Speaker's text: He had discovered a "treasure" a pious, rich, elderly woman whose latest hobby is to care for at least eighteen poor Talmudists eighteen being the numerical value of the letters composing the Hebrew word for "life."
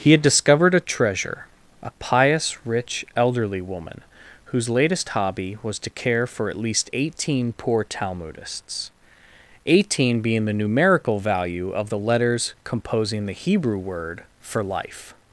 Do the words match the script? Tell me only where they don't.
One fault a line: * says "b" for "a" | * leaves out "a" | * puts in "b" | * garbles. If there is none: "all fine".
* says "was" for "is"